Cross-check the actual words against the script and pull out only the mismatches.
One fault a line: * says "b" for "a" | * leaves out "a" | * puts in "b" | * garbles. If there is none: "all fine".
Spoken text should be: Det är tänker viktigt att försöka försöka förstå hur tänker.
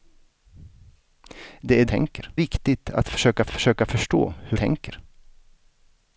all fine